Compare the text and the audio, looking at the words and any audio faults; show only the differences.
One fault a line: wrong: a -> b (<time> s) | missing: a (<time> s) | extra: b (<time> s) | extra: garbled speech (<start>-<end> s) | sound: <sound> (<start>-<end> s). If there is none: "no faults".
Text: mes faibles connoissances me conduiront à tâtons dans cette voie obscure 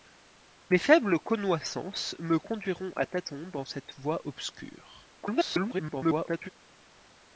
extra: garbled speech (5.2-6.5 s)